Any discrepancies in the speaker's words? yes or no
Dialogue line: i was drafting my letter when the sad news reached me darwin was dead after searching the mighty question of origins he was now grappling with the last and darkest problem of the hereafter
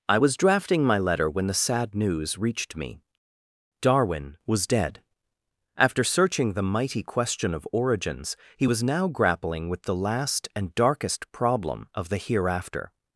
no